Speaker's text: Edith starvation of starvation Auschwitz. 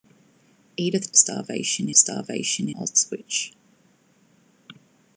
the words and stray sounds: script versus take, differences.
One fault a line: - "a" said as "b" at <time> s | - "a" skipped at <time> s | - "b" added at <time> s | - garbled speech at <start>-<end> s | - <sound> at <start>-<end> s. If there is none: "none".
none